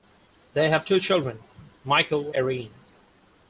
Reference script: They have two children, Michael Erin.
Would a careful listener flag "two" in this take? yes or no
no